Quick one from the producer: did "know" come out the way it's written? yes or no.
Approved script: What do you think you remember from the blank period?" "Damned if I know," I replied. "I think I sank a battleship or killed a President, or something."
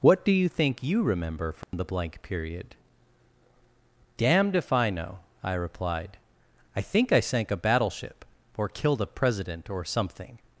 yes